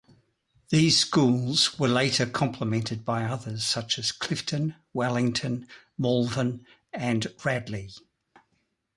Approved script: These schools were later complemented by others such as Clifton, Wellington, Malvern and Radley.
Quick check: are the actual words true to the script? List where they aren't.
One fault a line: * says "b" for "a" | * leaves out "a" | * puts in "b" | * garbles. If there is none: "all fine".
all fine